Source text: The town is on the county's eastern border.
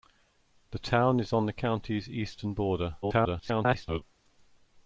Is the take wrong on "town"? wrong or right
right